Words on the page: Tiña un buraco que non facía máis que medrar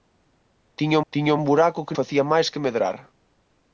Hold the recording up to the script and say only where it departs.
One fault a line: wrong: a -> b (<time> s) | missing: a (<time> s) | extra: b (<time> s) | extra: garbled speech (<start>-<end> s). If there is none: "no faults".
extra: tiña (1.1 s)
missing: non (2.0 s)